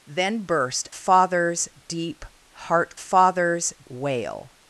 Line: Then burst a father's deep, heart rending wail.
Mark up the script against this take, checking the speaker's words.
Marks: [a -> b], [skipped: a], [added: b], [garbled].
Then burst [skipped: a] father's deep, heart [rending -> father's] wail.